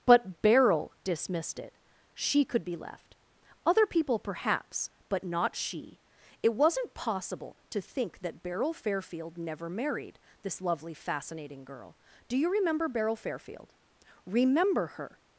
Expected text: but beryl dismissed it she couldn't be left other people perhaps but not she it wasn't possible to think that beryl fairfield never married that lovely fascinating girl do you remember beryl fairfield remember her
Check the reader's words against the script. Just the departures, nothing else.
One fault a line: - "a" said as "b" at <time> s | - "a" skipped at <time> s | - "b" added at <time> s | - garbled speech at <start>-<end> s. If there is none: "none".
- "couldn't" said as "could" at 2.4 s
- "that" said as "this" at 10.4 s